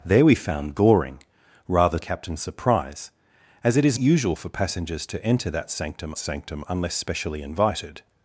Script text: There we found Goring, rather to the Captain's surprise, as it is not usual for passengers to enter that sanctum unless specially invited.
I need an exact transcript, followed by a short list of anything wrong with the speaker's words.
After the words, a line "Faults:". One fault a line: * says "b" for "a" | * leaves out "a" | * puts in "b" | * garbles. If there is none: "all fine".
There we found Goring, rather Captain's surprise, as it is usual for passengers to enter that sanctum sanctum unless specially invited.
Faults:
* leaves out "to the"
* leaves out "not"
* puts in "sanctum"